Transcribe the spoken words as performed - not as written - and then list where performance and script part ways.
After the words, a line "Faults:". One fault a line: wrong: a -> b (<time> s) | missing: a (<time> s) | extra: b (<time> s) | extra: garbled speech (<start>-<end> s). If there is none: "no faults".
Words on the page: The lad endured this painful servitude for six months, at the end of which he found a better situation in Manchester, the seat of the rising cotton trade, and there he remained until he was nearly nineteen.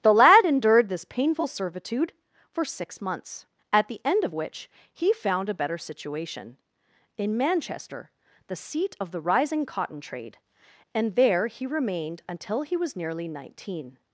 The lad endured this painful servitude for six months, at the end of which he found a better situation in Manchester, the seat of the rising cotton trade, and there he remained until he was nearly nineteen.
Faults:
no faults